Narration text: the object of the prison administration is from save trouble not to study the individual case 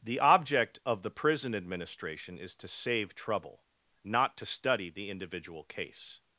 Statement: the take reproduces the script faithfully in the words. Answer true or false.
false